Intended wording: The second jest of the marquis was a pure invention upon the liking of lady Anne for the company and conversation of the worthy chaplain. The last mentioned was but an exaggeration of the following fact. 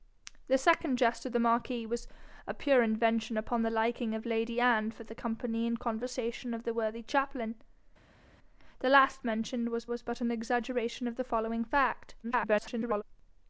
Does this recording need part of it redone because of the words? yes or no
yes